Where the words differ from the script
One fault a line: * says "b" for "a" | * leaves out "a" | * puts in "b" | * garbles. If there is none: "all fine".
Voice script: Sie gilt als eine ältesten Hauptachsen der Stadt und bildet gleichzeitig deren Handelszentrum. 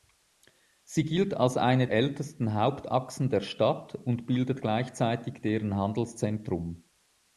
all fine